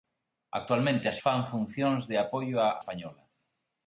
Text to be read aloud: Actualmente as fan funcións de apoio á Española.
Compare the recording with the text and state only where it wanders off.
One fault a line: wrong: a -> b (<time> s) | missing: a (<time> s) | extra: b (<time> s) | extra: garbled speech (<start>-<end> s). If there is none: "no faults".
no faults